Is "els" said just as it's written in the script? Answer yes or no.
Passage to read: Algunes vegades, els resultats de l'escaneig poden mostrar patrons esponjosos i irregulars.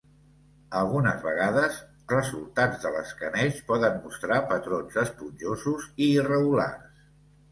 no